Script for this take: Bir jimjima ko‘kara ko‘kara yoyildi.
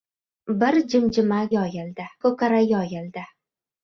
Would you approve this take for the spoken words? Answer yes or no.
no